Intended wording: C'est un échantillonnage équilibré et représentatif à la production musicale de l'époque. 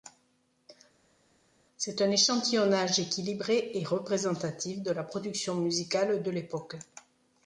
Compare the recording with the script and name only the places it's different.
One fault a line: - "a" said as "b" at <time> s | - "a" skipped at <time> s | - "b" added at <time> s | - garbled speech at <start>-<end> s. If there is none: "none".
- "à" said as "de" at 4.8 s